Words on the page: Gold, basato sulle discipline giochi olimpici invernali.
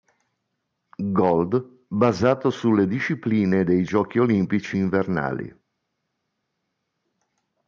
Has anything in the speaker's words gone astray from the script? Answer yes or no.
yes